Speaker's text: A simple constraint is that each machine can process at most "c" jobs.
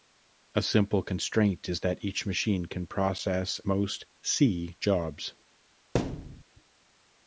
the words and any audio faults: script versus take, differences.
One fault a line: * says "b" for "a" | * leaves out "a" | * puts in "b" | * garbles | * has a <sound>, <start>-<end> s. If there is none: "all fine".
* leaves out "at"
* has a thud, 5.9-6.4 s